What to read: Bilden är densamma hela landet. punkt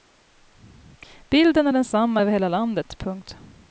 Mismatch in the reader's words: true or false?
true